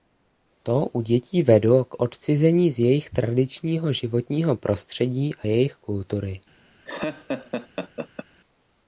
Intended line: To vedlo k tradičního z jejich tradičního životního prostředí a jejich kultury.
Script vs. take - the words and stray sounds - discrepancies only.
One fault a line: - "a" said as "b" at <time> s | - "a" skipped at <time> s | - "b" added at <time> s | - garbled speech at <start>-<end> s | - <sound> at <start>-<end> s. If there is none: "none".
- "u dětí" added at 0.8 s
- "tradičního" said as "odcizení" at 2.0 s
- laugh at 6.8-8.3 s